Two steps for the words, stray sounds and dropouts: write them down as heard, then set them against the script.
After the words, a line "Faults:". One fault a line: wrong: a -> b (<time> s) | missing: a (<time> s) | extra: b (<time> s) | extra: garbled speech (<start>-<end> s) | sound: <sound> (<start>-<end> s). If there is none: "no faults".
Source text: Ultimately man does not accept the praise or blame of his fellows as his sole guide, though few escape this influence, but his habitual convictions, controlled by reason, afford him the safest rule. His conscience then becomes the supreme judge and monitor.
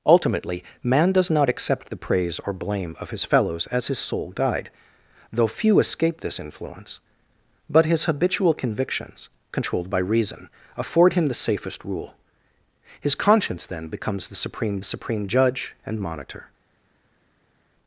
Ultimately man does not accept the praise or blame of his fellows as his sole guide, though few escape this influence, but his habitual convictions, controlled by reason, afford him the safest rule. His conscience then becomes the supreme supreme judge and monitor.
Faults:
extra: supreme (14.8 s)